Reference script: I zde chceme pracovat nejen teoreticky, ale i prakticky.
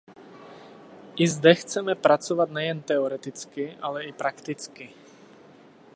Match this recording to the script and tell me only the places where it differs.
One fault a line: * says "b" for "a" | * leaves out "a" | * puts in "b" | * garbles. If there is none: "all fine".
all fine